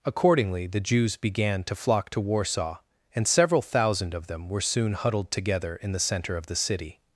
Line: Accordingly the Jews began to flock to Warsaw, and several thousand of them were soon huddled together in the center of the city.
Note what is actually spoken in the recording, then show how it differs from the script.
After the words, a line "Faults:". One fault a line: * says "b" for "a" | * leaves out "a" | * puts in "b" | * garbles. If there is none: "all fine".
Accordingly the Jews began to flock to Warsaw, and several thousand of them were soon huddled together in the center of the city.
Faults:
all fine